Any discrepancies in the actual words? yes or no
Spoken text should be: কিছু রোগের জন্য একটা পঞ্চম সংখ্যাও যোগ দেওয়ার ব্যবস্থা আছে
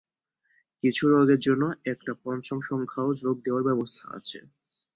no